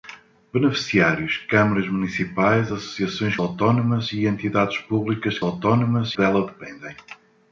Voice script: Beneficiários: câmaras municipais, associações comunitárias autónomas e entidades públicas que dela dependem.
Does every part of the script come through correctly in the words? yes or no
no